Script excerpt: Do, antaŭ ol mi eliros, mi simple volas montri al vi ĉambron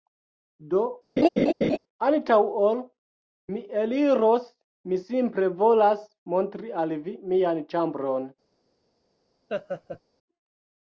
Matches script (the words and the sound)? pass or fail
fail